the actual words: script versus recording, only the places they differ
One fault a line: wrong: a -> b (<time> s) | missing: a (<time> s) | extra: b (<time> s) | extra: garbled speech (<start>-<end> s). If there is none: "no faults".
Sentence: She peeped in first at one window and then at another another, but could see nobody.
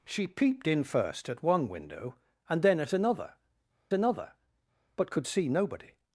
no faults